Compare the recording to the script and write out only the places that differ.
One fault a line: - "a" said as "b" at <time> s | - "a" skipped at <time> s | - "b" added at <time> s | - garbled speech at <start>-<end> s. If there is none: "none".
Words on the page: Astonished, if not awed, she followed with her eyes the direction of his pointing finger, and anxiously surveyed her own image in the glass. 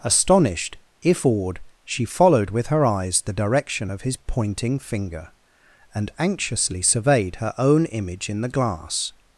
- "not" skipped at 1.2 s